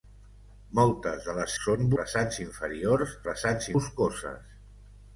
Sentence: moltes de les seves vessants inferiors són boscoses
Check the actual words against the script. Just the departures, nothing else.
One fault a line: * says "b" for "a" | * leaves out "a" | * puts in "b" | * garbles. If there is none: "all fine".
* says "són" for "seves"
* says "vessants" for "són"